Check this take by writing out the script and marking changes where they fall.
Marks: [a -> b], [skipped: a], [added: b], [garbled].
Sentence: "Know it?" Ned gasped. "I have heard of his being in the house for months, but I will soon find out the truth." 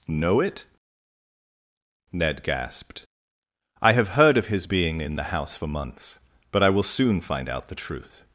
"Know it?" Ned gasped. "I have heard of his being in the house for months, but I will soon find out the truth."